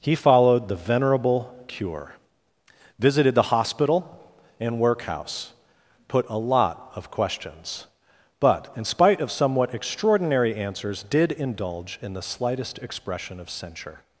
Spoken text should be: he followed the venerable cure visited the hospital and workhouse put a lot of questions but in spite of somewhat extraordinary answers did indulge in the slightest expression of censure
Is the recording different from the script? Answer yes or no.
no